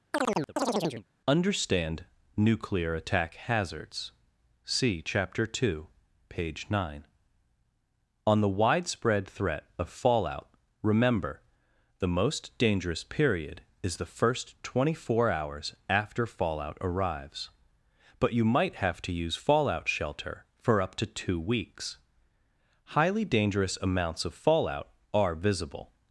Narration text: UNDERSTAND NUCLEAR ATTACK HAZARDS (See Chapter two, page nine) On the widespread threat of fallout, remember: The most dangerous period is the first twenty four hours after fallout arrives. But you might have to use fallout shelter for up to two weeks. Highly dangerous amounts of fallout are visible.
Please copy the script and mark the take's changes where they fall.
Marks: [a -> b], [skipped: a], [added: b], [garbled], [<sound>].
[chirp] UNDERSTAND NUCLEAR ATTACK HAZARDS (See Chapter two, page nine) On the widespread threat of fallout, remember: The most dangerous period is the first twenty four hours after fallout arrives. But you might have to use fallout shelter for up to two weeks. Highly dangerous amounts of fallout are visible.